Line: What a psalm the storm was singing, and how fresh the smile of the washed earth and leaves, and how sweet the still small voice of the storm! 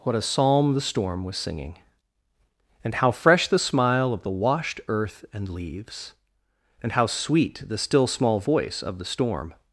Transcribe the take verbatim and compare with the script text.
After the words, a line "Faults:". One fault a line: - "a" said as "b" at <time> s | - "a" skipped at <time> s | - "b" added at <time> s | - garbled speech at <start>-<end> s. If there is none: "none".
What a psalm the storm was singing, and how fresh the smile of the washed earth and leaves, and how sweet the still small voice of the storm!
Faults:
none